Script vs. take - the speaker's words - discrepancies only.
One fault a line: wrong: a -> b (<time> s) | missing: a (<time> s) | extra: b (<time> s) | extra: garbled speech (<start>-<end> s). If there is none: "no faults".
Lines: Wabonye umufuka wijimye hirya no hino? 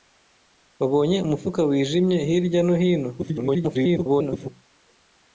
extra: garbled speech (3.2-4.5 s)